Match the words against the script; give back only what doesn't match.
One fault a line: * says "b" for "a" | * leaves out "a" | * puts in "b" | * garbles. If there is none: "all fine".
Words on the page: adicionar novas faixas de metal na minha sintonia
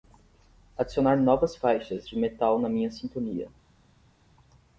all fine